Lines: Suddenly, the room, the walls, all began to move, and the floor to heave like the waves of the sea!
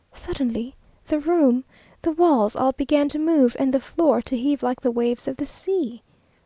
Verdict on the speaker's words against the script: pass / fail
pass